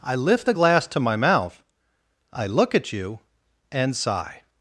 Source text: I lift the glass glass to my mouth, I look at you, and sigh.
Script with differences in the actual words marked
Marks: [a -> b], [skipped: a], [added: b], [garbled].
I lift the glass [skipped: glass] to my mouth, I look at you, and sigh.